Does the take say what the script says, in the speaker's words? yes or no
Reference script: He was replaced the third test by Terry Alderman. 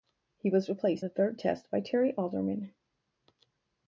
yes